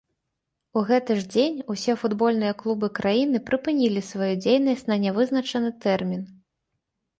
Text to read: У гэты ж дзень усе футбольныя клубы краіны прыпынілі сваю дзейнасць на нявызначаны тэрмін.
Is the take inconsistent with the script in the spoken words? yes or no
no